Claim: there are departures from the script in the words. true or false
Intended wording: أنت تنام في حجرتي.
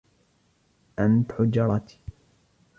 true